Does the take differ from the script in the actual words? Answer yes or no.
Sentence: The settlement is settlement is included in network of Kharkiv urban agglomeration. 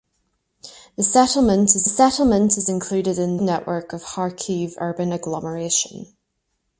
no